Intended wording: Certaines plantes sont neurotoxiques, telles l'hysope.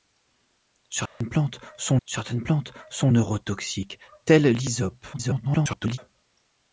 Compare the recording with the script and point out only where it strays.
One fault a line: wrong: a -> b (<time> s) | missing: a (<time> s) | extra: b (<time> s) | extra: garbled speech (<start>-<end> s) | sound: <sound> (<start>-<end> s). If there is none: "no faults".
sound: dropout (1.1-1.2 s)
extra: certaines plantes sont (2.0 s)
extra: garbled speech (5.1-6.0 s)